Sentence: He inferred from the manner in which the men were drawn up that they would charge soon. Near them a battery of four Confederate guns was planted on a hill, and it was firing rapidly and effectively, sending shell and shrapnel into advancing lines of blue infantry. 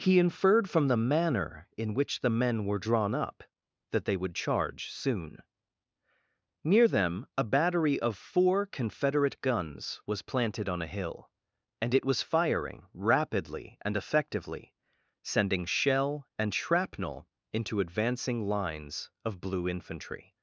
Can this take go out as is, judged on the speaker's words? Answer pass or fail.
pass